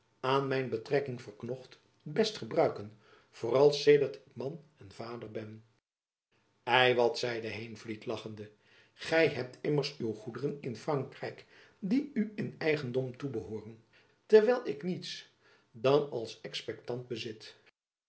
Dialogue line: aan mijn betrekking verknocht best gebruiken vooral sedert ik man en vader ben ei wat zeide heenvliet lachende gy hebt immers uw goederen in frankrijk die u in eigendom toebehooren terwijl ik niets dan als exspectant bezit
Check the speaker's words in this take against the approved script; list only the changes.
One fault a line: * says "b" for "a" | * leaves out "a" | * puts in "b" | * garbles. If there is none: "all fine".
all fine